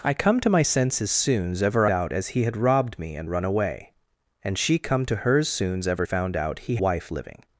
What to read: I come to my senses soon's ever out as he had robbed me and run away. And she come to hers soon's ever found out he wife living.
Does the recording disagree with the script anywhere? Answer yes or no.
no